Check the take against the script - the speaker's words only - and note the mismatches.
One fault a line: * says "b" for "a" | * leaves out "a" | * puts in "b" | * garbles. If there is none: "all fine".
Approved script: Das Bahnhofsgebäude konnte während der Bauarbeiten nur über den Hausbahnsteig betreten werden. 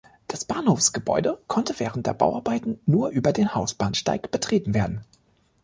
all fine